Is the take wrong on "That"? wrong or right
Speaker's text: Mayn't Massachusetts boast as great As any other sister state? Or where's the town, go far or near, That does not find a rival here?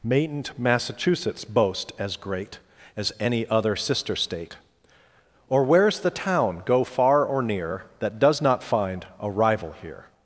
right